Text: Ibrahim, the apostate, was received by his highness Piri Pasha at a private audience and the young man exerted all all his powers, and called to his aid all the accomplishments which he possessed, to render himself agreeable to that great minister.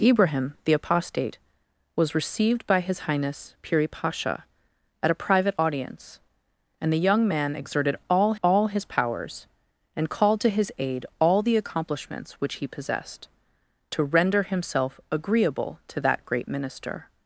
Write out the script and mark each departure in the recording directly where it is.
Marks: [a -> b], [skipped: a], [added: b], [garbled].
Ibrahim, the apostate, was received by his highness Piri Pasha at a private audience and the young man exerted all all his powers, and called to his aid all the accomplishments which he possessed, to render himself agreeable to that great minister.